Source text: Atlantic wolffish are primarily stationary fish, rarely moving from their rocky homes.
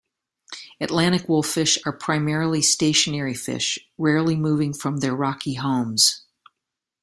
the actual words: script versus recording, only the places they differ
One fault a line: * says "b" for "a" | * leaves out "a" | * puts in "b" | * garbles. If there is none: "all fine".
all fine